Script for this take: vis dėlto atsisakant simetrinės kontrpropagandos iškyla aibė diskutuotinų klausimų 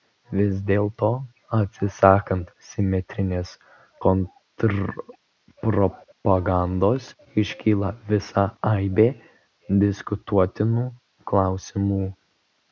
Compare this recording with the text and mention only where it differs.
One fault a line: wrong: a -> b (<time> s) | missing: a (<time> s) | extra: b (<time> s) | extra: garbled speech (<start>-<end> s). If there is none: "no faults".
extra: visa (8.1 s)